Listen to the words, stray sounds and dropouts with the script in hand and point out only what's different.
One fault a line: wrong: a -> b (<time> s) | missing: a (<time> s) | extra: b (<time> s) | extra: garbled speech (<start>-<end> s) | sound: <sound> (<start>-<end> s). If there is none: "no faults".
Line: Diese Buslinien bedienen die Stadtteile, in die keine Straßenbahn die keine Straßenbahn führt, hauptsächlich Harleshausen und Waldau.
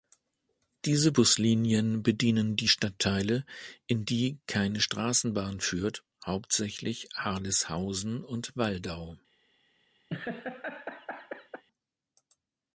missing: die keine Straßenbahn (5.6 s)
sound: laugh (10.1-11.6 s)